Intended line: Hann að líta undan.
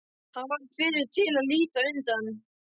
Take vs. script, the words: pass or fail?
fail